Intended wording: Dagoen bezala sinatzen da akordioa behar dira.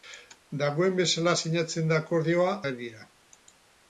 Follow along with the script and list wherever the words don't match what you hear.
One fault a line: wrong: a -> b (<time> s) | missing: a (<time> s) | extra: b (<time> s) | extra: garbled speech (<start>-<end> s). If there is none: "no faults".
no faults